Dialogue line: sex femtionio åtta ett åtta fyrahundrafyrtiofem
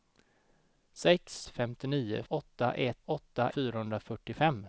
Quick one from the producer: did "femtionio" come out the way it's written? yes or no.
yes